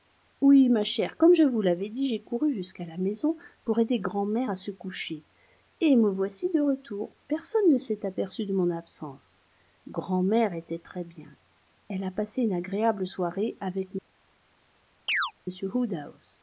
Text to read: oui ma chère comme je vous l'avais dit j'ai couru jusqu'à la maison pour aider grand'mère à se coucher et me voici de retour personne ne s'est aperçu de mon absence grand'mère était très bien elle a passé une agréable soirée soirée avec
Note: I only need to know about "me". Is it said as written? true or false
true